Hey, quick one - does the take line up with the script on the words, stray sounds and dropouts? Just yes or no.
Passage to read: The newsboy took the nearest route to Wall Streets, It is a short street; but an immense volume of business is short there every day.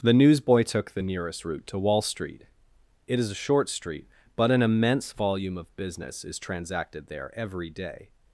no